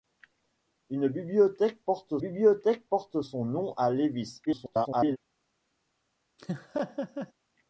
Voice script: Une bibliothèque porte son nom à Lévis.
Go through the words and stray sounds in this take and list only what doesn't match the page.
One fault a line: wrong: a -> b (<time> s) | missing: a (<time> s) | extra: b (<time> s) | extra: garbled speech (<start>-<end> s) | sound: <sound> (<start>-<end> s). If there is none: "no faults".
extra: bibliothèque porte (2.2 s)
extra: garbled speech (4.5-5.2 s)
sound: laugh (6.4-7.3 s)